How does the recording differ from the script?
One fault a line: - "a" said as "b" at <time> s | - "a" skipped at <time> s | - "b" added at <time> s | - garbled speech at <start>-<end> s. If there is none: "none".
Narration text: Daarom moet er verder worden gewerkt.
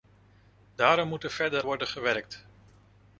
none